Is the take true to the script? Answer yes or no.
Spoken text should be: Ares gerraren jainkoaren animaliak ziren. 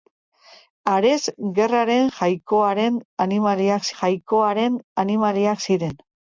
no